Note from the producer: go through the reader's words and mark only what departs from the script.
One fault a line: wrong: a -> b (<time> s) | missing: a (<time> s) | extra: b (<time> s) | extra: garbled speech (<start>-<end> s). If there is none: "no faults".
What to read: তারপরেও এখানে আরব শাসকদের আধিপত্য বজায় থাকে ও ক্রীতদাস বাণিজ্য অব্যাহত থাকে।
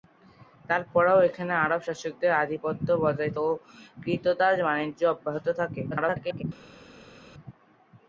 missing: থাকে (3.3 s)
extra: garbled speech (5.9-6.4 s)